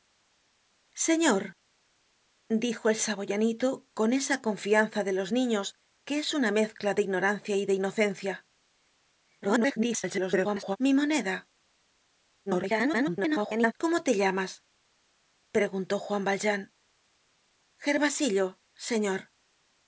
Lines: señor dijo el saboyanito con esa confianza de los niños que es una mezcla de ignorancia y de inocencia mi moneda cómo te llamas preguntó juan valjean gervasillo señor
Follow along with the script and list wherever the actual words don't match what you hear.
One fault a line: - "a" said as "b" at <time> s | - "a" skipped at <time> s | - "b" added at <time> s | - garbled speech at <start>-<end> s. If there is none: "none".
- garbled speech at 9.4-10.8 s
- garbled speech at 12.5-13.7 s